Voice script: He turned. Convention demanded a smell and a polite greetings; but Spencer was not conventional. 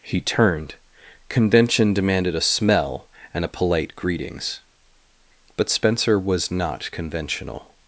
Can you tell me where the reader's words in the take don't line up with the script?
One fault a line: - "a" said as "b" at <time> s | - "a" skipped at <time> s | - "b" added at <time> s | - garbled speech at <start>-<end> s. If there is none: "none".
none